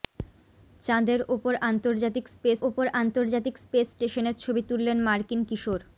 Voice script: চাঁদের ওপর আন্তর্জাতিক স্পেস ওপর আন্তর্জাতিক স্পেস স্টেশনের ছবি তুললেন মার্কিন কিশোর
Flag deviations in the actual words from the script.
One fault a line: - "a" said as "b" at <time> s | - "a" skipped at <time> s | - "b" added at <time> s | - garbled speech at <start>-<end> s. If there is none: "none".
none